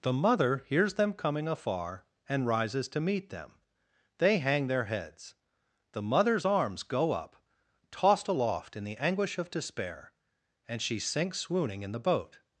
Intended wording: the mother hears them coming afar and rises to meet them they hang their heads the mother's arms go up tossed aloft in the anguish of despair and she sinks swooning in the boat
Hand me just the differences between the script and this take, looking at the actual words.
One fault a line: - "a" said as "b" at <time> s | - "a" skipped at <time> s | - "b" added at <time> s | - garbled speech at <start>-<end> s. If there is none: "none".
none